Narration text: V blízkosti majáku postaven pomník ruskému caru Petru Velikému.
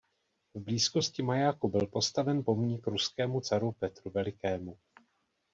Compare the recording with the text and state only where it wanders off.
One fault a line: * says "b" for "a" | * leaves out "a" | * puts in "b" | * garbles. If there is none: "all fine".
* puts in "byl"